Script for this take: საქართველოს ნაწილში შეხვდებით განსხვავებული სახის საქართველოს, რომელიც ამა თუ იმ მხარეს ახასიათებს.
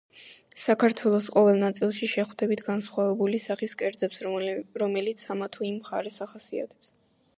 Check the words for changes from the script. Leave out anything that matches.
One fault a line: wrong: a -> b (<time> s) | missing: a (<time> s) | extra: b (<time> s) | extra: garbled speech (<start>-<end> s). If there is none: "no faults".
extra: ყოველ (1.4 s)
wrong: საქართველოს -> კერძებს (3.8 s)